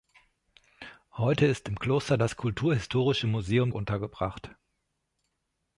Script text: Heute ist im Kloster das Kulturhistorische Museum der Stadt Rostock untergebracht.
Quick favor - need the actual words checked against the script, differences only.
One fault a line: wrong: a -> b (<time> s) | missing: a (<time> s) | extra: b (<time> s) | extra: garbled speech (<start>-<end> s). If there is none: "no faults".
missing: der Stadt Rostock (3.7 s)